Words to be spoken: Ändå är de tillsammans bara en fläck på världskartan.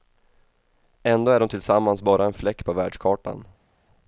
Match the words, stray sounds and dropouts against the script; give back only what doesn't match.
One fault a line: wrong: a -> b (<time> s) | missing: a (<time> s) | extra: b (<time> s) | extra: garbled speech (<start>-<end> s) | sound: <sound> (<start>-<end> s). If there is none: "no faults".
no faults